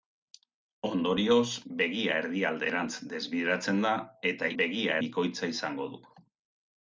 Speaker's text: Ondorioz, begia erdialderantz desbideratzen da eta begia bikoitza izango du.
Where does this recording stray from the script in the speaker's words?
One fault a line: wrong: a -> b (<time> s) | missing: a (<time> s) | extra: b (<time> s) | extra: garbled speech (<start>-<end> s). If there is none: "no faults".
no faults